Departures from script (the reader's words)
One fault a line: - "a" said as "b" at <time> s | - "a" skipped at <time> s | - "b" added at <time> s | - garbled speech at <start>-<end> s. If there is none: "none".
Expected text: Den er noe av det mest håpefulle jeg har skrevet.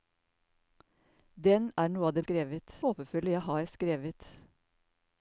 - "mest" said as "skrevet" at 2.2 s